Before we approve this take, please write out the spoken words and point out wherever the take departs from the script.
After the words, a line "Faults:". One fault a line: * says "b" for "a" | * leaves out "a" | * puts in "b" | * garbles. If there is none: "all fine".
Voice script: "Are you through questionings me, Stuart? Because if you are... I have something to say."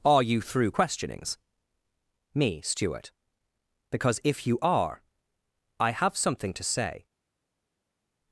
"Are you through questionings me, Stuart? Because if you are... I have something to say."
Faults:
all fine